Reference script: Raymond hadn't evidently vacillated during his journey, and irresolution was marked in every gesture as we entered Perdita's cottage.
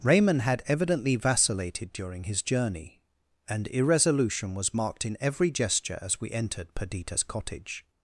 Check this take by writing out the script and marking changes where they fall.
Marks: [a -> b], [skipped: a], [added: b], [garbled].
Raymond [hadn't -> had] evidently vacillated during his journey, and irresolution was marked in every gesture as we entered Perdita's cottage.